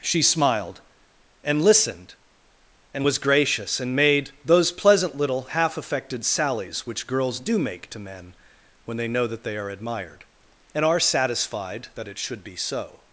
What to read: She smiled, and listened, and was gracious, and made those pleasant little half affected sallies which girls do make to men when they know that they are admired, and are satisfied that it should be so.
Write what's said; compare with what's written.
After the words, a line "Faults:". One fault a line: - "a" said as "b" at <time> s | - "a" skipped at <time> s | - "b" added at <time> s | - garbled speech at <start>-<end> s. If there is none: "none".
She smiled, and listened, and was gracious, and made those pleasant little half affected sallies which girls do make to men when they know that they are admired, and are satisfied that it should be so.
Faults:
none